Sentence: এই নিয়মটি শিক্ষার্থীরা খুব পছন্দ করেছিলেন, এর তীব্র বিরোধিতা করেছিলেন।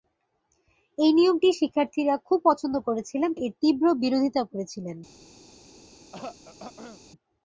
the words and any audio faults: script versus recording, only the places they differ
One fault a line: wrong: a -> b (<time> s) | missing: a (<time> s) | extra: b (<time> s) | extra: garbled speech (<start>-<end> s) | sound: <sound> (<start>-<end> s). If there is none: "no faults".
sound: throat clearing (6.1-7.0 s)